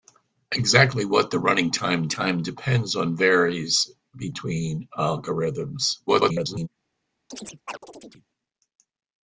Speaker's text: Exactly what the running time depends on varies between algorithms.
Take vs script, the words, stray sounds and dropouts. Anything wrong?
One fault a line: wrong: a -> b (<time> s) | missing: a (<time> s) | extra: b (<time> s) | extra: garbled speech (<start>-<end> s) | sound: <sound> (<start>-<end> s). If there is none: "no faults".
extra: time (2.1 s)
extra: garbled speech (6.1-6.7 s)
sound: chirp (7.3-8.3 s)